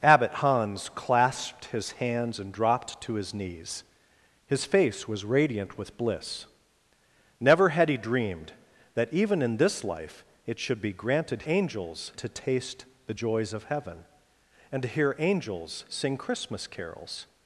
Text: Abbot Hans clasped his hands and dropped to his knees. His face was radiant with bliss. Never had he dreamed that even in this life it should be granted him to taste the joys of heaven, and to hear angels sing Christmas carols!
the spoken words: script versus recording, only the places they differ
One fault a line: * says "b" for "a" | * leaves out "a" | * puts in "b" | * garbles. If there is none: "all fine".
* says "angels" for "him"